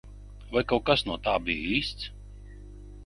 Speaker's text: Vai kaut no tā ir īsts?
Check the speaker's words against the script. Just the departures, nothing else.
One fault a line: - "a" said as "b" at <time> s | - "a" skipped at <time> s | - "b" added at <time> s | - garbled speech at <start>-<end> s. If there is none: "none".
- "kas" added at 0.9 s
- "ir" said as "bija" at 1.5 s